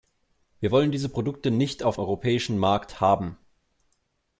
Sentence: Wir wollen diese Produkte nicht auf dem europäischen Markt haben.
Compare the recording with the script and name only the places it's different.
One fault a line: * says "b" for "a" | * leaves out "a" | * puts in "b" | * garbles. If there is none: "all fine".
* leaves out "dem"